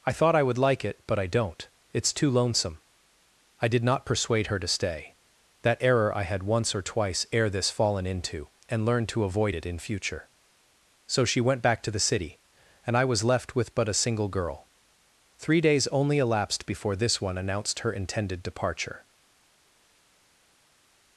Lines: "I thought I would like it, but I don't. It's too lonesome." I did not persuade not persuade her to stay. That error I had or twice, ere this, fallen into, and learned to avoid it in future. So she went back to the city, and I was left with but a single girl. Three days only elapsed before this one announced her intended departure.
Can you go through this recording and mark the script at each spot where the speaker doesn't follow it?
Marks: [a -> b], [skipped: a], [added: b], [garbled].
"I thought I would like it, but I don't. It's too lonesome." I did not persuade [skipped: not persuade] her to stay. That error I had [added: once] or twice, ere this, fallen into, and learned to avoid it in future. So she went back to the city, and I was left with but a single girl. Three days only elapsed before this one announced her intended departure.